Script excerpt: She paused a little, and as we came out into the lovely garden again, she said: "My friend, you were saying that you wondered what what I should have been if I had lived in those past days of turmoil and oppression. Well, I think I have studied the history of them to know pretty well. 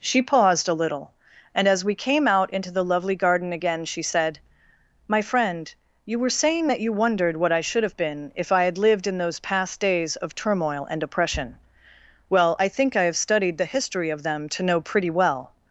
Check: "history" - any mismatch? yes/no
no